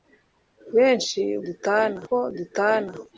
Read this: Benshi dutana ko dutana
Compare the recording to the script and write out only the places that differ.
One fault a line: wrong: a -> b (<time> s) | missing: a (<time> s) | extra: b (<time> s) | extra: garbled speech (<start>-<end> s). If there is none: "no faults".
no faults